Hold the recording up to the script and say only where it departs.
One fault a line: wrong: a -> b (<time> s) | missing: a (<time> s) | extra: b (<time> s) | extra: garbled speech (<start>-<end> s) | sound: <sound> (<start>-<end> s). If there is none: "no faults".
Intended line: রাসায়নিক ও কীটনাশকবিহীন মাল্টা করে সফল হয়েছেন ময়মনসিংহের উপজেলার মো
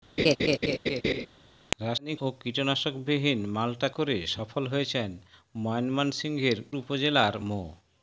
sound: laugh (0.2-1.3 s)